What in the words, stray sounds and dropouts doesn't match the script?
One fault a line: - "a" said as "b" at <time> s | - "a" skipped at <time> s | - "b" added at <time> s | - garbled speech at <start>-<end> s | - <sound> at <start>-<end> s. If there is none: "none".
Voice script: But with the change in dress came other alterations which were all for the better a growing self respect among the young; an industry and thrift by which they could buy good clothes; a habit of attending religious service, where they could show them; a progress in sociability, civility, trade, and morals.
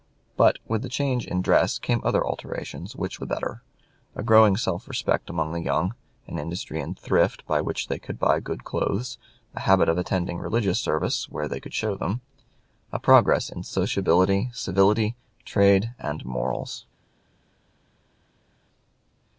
- "were all for" skipped at 3.2 s